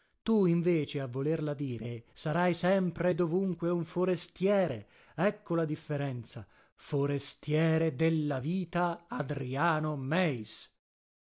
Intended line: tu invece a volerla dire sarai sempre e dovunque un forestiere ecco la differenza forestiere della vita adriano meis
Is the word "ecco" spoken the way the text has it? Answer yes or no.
yes